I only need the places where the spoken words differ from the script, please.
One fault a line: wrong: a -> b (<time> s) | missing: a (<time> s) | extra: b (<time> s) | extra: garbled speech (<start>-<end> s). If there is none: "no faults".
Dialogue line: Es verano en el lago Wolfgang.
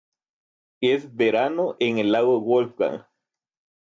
no faults